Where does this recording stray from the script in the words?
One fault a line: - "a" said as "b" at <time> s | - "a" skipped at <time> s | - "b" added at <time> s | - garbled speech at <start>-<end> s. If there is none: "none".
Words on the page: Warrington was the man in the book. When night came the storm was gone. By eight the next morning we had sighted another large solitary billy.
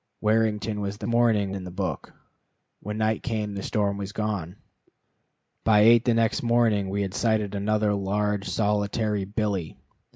- "man" said as "morning" at 1.0 s